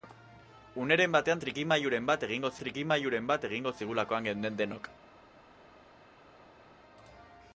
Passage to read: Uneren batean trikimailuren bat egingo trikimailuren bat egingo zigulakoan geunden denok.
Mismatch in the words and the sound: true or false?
false